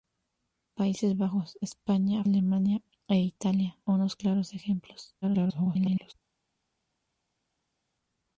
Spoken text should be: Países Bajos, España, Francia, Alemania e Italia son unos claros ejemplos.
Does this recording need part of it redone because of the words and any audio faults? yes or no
yes